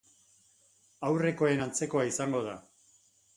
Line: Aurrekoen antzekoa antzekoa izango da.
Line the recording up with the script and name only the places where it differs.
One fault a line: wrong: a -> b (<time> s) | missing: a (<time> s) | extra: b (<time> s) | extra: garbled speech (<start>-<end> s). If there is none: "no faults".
missing: antzekoa (2.0 s)